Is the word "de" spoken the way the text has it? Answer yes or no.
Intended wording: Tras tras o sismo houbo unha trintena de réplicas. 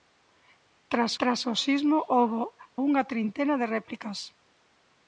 yes